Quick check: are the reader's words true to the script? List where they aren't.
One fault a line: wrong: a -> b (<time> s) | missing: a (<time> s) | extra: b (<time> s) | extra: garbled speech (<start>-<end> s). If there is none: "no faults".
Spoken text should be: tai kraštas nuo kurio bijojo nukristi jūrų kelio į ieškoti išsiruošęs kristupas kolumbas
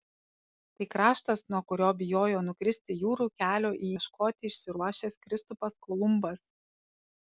no faults